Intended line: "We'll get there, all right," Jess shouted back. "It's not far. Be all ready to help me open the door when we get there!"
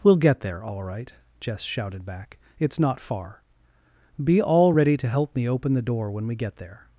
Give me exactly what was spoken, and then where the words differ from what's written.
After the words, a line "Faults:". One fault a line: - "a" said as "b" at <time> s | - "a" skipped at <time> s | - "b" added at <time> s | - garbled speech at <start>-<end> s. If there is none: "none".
"We'll get there, all right," Jess shouted back. "It's not far. Be all ready to help me open the door when we get there!"
Faults:
none